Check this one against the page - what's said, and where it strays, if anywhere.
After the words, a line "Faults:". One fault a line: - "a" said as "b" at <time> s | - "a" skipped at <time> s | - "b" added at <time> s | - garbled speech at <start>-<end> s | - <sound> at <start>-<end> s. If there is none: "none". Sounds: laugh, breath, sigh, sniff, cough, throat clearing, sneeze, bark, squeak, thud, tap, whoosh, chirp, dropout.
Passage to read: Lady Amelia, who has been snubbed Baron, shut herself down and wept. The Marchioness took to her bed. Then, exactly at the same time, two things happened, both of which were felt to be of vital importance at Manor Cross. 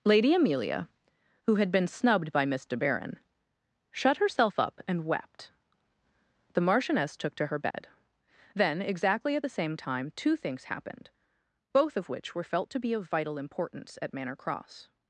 Lady Amelia, who had been snubbed by Miss De Baron, shut herself up and wept. The Marchioness took to her bed. Then, exactly at the same time, two things happened, both of which were felt to be of vital importance at Manor Cross.
Faults:
- "has" said as "had" at 1.6 s
- "by Miss De" added at 2.3 s
- "down" said as "up" at 4.6 s
- dropout at 7.7-7.7 s